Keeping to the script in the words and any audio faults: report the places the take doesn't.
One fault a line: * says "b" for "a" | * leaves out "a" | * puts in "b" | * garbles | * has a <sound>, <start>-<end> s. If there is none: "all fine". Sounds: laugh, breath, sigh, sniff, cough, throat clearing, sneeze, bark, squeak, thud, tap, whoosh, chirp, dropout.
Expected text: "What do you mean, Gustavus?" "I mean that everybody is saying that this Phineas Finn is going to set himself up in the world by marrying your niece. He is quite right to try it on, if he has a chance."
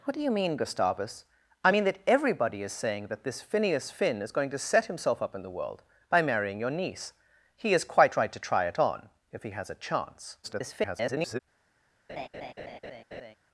* garbles
* has a laugh, 12.1-13.4 s